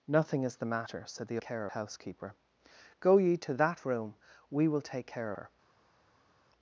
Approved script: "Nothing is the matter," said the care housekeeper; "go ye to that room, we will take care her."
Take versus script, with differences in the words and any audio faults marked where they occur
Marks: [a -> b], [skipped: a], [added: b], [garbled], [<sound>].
"Nothing is the matter," said the care housekeeper; "go ye to that room, we will take care her."